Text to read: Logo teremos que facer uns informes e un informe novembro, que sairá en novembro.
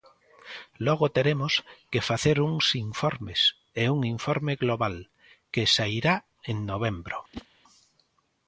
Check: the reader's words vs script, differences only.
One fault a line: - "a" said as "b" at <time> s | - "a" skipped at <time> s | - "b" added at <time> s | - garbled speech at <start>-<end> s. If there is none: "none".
- "novembro" said as "global" at 4.6 s